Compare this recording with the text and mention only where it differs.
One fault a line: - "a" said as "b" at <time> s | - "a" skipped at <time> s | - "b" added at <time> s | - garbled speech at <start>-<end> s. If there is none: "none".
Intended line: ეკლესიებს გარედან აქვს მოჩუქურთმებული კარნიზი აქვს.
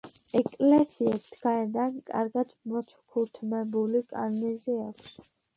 - "აქვს" said as "კარგად" at 2.1 s